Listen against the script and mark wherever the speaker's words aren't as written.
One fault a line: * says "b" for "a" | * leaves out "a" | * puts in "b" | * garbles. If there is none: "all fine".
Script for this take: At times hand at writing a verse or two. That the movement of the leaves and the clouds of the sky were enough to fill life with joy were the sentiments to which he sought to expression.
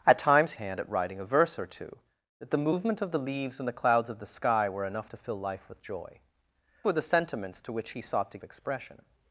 all fine